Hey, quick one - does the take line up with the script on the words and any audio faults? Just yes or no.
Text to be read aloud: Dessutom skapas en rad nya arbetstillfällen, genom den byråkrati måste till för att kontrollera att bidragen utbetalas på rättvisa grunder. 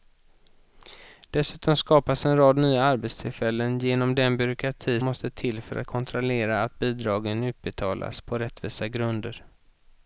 yes